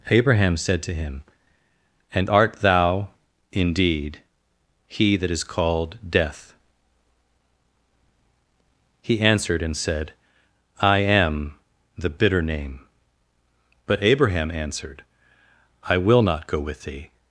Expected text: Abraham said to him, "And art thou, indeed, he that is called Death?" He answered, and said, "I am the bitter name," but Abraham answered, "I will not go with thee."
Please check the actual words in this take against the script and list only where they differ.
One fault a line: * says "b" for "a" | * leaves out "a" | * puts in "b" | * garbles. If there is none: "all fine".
all fine